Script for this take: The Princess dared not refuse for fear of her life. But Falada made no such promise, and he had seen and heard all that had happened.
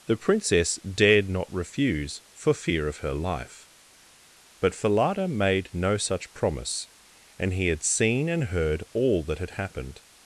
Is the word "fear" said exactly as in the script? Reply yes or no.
yes